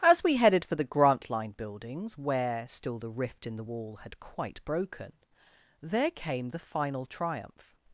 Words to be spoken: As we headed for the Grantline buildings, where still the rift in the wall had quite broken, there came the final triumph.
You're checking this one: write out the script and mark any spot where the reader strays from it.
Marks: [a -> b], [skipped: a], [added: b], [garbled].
As we headed for the Grantline buildings, where still the rift in the wall had quite broken, there came the final triumph.